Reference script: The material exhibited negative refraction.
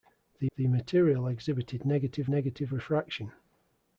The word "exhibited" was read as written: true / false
true